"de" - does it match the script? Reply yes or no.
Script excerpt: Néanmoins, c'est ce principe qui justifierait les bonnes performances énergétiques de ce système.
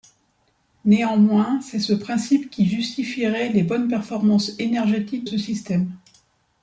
no